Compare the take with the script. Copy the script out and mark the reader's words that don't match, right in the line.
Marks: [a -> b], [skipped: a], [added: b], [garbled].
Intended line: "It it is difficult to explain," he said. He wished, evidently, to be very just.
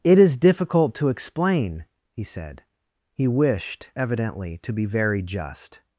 "It [skipped: it] is difficult to explain," he said. He wished, evidently, to be very just.